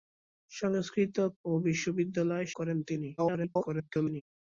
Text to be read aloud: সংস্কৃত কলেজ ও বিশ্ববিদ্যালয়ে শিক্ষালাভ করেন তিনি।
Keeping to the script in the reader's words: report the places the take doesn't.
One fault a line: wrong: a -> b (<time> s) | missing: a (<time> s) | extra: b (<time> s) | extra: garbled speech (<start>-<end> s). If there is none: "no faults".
missing: কলেজ (1.2 s)
missing: শিক্ষালাভ (2.5 s)
extra: garbled speech (3.2-4.2 s)